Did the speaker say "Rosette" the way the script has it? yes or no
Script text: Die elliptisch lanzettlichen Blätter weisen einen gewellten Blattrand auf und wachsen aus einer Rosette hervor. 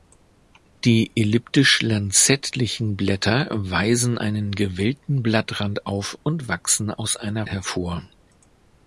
no